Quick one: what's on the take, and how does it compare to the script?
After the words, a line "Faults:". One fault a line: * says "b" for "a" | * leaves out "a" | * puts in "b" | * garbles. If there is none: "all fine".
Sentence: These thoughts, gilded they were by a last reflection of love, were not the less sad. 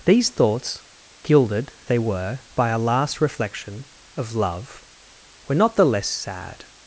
These thoughts, gilded they were by a last reflection of love, were not the less sad.
Faults:
all fine